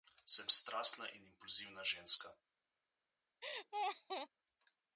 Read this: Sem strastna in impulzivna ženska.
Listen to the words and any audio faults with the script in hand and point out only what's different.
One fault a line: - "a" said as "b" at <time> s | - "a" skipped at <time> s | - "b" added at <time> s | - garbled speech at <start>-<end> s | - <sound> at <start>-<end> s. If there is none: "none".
- laugh at 3.4-4.3 s